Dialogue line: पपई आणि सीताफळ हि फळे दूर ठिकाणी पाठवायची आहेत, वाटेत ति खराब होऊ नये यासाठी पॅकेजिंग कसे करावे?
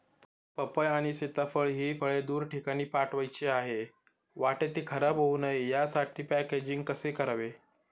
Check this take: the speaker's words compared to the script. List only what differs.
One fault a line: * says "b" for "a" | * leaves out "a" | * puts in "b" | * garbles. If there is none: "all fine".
all fine